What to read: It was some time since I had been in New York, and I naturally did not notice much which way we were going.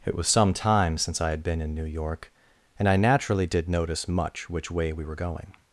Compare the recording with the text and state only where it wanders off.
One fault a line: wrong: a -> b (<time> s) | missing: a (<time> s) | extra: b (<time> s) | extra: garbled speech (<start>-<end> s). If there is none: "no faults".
missing: not (3.7 s)